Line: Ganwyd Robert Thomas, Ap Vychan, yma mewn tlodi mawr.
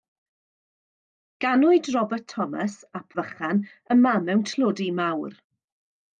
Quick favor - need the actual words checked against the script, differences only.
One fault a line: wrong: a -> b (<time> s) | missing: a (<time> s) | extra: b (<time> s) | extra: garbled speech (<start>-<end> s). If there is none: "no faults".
no faults